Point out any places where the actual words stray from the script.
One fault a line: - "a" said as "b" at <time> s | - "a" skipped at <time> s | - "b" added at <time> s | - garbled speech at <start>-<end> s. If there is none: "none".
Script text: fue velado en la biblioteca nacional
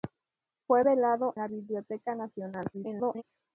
- "en" skipped at 1.4 s
- garbled speech at 2.7-3.2 s